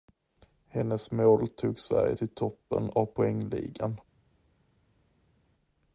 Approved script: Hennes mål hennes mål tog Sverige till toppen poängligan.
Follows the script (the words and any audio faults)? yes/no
no